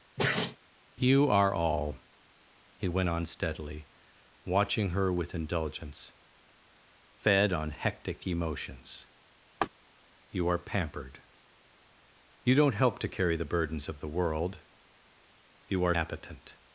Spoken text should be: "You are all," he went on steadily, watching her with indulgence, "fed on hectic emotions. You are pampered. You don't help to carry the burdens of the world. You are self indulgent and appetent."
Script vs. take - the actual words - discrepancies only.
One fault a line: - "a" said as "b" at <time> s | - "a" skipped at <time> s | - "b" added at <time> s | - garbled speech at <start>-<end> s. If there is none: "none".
- "self indulgent and" skipped at 16.0 s